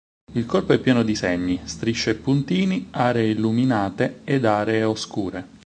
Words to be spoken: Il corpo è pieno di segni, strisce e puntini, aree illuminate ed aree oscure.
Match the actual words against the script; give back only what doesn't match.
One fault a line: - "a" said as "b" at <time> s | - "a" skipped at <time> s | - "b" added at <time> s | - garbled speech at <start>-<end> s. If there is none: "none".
none